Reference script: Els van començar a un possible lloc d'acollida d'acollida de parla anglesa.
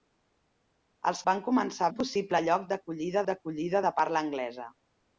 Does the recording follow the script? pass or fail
pass